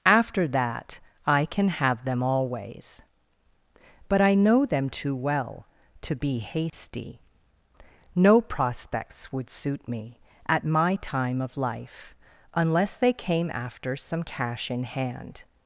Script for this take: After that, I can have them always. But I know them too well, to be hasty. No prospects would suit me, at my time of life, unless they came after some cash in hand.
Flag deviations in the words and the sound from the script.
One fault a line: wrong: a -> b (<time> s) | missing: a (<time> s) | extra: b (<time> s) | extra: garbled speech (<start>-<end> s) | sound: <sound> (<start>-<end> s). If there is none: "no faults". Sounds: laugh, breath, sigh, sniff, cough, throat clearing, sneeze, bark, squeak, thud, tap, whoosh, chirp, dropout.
sound: dropout (6.7-6.7 s)